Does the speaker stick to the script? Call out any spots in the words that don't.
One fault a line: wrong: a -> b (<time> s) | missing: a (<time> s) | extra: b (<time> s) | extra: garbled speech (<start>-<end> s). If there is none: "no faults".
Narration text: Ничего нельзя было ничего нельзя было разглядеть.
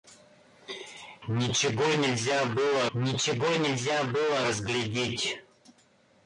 no faults